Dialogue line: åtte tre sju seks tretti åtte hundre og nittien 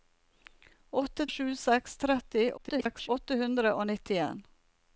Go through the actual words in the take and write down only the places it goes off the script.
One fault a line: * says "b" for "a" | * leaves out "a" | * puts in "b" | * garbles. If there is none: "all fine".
* leaves out "tre"
* garbles